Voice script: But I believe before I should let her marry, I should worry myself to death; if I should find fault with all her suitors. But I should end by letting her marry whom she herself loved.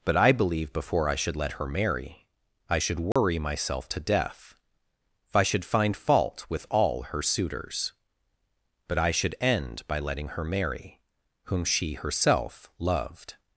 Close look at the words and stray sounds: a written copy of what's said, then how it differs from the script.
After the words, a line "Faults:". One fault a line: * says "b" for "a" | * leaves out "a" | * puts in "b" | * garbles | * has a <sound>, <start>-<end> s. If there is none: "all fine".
But I believe before I should let her marry, I should worry myself to death; if I should find fault with all her suitors. But I should end by letting her marry whom she herself loved.
Faults:
* has a dropout, 3.1-3.2 s